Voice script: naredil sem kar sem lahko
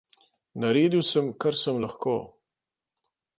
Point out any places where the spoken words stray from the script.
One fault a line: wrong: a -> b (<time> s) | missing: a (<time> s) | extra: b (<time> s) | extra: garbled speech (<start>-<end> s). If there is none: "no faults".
no faults